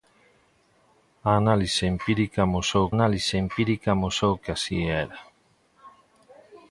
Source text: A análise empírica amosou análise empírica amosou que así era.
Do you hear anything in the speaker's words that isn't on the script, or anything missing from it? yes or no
no